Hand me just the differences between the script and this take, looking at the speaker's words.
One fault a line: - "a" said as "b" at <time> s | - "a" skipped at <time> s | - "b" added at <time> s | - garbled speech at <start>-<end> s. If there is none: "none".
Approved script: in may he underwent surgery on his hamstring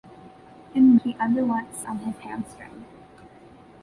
- "may" skipped at 0.9 s
- "surgery" skipped at 1.8 s